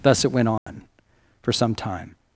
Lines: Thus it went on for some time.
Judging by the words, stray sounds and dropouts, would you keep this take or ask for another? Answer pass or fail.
fail